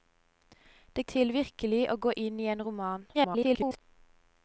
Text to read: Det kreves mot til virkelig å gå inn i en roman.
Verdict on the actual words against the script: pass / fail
fail